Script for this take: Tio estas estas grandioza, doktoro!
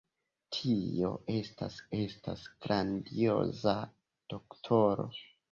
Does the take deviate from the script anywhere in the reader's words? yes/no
no